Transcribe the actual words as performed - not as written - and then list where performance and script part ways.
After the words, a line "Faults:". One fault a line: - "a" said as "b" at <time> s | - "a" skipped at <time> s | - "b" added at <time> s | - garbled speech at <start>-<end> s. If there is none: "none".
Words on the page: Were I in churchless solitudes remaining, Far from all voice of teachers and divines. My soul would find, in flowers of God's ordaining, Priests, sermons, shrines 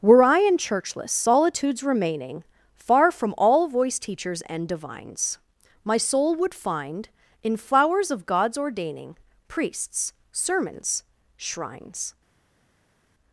Were I in churchless solitudes remaining, Far from all voice teachers and divines. My soul would find, in flowers of God's ordaining, Priests, sermons, shrines
Faults:
- "of" skipped at 4.0 s